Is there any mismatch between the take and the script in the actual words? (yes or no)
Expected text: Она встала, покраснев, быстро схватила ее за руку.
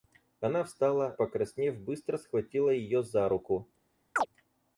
no